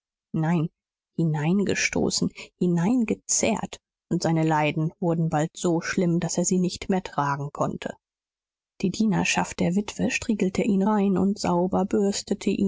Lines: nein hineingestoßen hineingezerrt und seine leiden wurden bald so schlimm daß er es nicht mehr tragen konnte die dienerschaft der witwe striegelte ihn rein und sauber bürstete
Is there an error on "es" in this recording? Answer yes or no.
yes